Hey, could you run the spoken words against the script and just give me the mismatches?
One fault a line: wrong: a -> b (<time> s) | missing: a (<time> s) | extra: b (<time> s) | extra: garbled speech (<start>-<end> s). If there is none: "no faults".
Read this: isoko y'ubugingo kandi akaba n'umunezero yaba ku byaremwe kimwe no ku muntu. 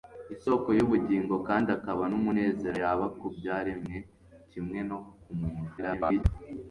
extra: garbled speech (5.8-6.2 s)